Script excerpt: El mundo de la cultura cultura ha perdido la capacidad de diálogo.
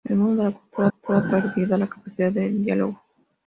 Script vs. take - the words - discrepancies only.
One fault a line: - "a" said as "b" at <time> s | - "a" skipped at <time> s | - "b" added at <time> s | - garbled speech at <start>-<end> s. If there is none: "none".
none